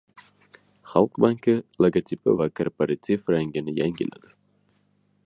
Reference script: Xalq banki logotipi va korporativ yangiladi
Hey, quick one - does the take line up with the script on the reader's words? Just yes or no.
no